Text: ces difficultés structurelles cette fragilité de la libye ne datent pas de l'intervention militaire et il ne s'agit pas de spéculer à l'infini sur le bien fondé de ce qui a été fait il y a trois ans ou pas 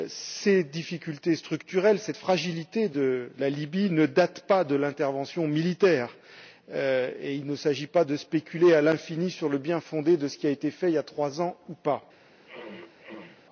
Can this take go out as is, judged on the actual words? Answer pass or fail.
pass